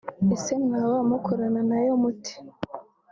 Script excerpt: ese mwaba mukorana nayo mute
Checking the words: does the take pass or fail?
pass